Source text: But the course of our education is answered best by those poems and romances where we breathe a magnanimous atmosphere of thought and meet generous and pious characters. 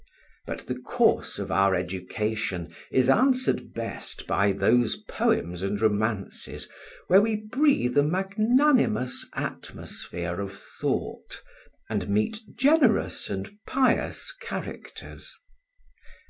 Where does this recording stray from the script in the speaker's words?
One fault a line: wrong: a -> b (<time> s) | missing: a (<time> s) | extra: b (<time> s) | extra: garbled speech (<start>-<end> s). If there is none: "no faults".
no faults